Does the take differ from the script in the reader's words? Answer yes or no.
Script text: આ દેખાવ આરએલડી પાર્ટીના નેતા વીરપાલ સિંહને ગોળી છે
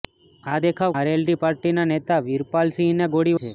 no